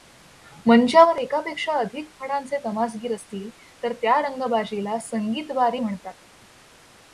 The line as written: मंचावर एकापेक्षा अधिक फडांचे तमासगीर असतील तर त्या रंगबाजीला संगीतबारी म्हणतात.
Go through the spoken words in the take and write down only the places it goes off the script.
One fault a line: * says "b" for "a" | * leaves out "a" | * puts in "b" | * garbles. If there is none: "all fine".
all fine